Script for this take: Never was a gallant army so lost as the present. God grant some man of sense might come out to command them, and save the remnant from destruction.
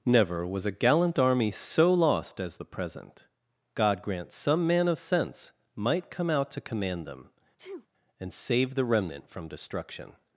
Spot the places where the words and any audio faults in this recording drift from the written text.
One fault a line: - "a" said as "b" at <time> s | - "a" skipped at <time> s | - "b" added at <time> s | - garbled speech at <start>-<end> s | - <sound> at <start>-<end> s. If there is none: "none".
- sneeze at 7.6-7.9 s